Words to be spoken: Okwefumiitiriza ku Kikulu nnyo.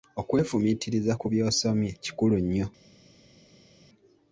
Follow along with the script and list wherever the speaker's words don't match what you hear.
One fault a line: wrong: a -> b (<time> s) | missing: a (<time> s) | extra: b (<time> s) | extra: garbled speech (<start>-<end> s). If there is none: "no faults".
extra: by'osomye (1.3 s)